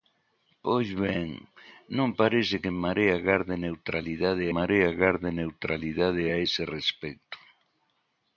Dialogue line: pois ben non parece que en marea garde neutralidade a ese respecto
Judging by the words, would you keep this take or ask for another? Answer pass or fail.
fail